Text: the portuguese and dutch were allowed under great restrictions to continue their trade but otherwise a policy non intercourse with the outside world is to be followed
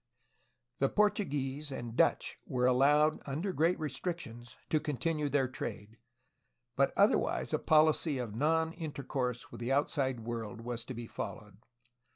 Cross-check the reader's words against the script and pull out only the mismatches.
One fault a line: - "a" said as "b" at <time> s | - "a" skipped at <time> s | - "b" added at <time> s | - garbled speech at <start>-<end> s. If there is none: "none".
- "of" added at 8.2 s
- "is" said as "was" at 10.6 s